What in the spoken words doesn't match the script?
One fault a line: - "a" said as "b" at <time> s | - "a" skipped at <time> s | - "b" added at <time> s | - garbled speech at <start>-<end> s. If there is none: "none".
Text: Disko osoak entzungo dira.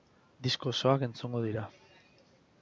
none